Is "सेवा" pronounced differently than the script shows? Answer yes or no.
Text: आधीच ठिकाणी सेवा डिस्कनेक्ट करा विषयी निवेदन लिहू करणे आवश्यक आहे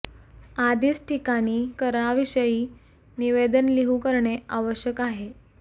yes